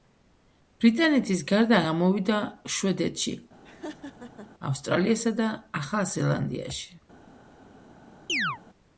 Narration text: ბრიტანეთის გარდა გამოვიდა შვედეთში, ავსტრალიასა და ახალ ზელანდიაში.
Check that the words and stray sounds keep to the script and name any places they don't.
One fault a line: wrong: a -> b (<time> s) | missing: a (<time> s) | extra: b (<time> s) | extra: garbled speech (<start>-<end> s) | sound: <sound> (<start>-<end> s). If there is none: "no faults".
sound: laugh (3.6-4.5 s)
sound: chirp (8.3-8.6 s)